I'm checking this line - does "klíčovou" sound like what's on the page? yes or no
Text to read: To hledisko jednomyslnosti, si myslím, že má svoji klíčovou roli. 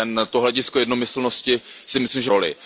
no